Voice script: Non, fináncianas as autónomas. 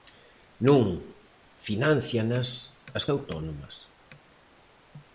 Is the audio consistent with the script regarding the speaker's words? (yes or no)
yes